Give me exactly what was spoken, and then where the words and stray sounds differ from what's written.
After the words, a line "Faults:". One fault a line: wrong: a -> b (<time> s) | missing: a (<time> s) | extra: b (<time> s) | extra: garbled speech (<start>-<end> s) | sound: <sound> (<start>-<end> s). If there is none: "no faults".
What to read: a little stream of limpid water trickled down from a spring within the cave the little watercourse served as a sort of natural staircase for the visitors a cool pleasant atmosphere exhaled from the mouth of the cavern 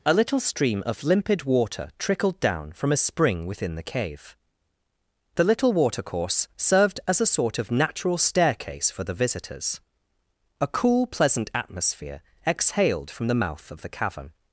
a little stream of limpid water trickled down from a spring within the cave the little watercourse served as a sort of natural staircase for the visitors a cool pleasant atmosphere exhaled from the mouth of the cavern
Faults:
no faults